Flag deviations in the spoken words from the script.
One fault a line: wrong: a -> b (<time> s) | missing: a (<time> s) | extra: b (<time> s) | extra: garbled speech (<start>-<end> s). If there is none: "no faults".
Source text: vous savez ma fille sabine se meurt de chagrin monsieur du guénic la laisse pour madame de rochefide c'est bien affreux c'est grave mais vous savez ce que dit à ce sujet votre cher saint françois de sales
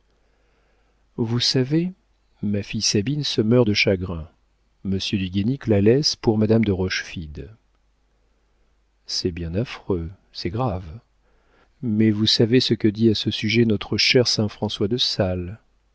wrong: votre -> notre (13.6 s)